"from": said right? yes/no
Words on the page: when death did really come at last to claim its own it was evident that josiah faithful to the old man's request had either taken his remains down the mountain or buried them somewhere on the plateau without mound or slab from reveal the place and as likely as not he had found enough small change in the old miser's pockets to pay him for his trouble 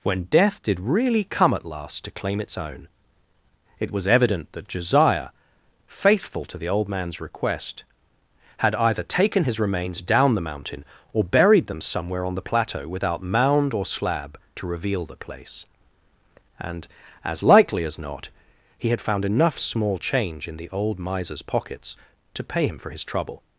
no